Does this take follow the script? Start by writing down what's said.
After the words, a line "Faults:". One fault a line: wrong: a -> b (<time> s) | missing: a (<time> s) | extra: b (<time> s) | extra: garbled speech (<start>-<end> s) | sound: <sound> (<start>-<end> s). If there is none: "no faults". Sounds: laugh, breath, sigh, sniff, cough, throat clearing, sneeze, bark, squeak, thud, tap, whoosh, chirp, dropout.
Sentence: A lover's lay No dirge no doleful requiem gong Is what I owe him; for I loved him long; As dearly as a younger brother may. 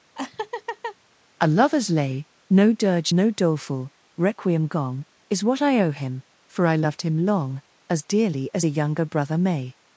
A lover's lay No dirge no doleful requiem gong Is what I owe him; for I loved him long; As dearly as a younger brother may.
Faults:
sound: laugh (0.2-1.0 s)